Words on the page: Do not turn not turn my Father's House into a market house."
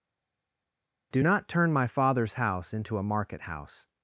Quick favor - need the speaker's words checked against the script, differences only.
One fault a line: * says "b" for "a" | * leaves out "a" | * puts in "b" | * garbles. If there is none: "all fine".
* leaves out "not turn"